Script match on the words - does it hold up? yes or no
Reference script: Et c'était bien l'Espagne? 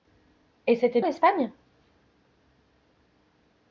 no